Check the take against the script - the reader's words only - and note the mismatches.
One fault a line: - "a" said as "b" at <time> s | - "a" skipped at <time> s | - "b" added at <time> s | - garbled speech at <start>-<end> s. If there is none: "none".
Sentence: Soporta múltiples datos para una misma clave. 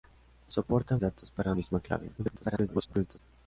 - "múltiples" skipped at 1.0 s
- "una" skipped at 1.5 s
- garbled speech at 2.2-3.2 s